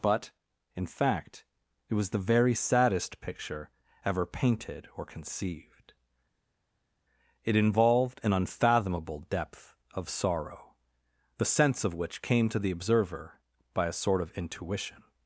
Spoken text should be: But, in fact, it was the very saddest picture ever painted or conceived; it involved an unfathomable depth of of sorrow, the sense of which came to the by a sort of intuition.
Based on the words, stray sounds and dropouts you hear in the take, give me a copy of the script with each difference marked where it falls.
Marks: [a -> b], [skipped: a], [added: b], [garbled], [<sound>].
But, in fact, it was the very saddest picture ever painted or conceived; it involved an unfathomable depth of [skipped: of] sorrow, the sense of which came to the [added: observer] by a sort of intuition.